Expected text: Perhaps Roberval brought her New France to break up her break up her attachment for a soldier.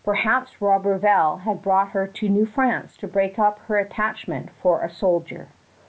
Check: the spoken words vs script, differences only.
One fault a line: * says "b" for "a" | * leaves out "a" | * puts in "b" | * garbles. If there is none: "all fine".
* puts in "had"
* puts in "to"
* leaves out "break up her"